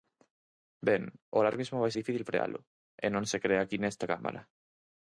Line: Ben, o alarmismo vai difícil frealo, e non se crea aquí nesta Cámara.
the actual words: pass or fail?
pass